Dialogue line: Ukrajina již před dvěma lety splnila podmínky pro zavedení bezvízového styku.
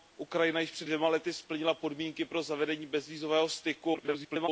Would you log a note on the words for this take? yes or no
yes